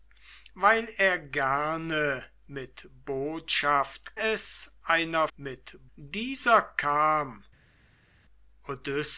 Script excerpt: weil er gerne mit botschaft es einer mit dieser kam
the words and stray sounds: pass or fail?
pass